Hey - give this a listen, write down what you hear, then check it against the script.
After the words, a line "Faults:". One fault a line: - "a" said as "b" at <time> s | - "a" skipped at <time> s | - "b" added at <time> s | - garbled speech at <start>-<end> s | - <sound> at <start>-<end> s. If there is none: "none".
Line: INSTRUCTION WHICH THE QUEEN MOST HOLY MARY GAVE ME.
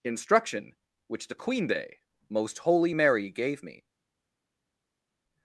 INSTRUCTION WHICH THE QUEEN day MOST HOLY MARY GAVE ME.
Faults:
- "day" added at 1.7 s